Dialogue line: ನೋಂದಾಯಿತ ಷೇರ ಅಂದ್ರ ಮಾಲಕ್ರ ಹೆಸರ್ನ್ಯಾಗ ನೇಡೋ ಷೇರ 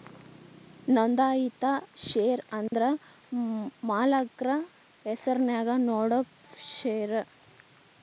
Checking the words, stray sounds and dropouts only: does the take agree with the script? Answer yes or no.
no